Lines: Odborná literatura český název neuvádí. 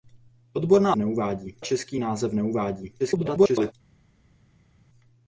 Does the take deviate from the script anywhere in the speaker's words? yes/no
yes